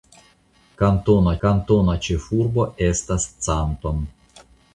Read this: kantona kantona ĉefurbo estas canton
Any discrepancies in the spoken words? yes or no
no